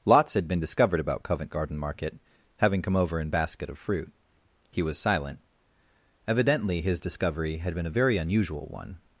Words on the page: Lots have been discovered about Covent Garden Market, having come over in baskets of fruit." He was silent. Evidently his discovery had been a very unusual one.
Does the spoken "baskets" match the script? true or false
false